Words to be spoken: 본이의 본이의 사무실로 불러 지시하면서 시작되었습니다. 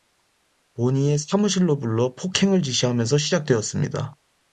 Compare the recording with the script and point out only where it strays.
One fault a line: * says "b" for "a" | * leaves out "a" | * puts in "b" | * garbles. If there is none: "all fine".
* leaves out "본이의"
* puts in "폭행을"